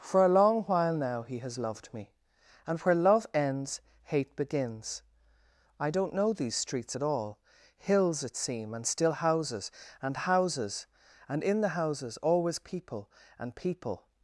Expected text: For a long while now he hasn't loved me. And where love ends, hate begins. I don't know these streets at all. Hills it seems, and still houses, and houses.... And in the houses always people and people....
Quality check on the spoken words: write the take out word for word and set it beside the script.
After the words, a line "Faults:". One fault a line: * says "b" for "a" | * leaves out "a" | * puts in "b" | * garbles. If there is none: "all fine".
For a long while now he has loved me. And where love ends, hate begins. I don't know these streets at all. Hills it seem, and still houses, and houses.... And in the houses always people and people....
Faults:
* says "has" for "hasn't"
* says "seem" for "seems"